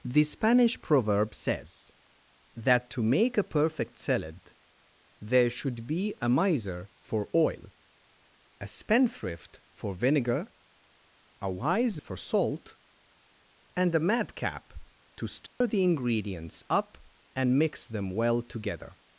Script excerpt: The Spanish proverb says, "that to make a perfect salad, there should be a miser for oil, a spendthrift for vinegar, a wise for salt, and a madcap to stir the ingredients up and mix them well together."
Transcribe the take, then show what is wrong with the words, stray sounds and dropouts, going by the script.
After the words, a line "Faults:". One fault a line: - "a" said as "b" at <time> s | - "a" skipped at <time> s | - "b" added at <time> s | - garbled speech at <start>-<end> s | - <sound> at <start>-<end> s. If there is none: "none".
The Spanish proverb says, "that to make a perfect salad, there should be a miser for oil, a spendthrift for vinegar, a wise for salt, and a madcap to stir the ingredients up and mix them well together."
Faults:
- dropout at 15.5-15.6 s